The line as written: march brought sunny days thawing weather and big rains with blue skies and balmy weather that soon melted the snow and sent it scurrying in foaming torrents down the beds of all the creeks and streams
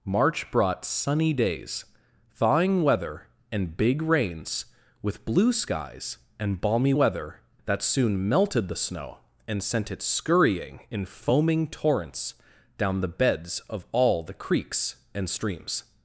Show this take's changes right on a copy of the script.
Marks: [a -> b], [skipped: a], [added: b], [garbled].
march brought sunny days thawing weather and big rains with blue skies and balmy weather that soon melted the snow and sent it scurrying in foaming torrents down the beds of all the creeks and streams